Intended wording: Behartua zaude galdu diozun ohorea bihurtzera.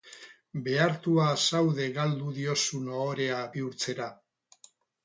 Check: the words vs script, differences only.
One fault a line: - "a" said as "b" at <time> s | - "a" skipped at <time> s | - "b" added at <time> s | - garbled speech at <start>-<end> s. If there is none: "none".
none